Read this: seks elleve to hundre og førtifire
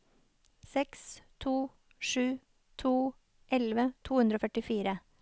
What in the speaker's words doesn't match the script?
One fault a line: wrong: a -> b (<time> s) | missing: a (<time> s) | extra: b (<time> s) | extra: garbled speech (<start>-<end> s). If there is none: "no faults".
extra: to sju to (1.4 s)